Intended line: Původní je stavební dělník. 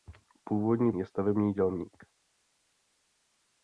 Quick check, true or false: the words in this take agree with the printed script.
true